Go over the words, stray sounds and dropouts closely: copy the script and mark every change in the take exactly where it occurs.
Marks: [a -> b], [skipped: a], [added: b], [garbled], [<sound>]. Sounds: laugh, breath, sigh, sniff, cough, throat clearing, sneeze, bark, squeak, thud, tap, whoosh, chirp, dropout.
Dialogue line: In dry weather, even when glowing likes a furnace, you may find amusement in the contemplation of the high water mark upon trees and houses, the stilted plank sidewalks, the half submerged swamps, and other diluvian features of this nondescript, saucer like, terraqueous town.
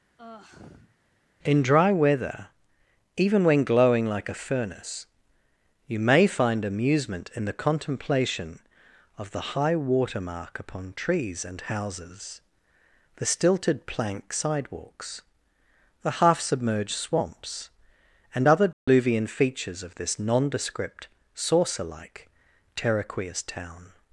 [sigh] In dry weather, even when glowing [likes -> like] a furnace, you may find amusement in the contemplation of the high water mark upon trees and houses, the stilted plank sidewalks, the half submerged swamps, and other diluvian [dropout] features of this nondescript, saucer like, terraqueous town.